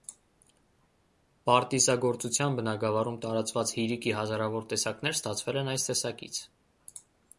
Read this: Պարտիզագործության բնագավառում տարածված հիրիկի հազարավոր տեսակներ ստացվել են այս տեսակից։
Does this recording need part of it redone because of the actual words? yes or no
no